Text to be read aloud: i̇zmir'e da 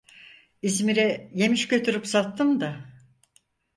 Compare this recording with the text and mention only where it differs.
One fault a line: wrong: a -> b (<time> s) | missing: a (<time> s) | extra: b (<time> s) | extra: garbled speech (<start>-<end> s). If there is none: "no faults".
extra: yemiş götürüp sattım (1.3 s)